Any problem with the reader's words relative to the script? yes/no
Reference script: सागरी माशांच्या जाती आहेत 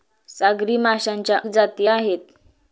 no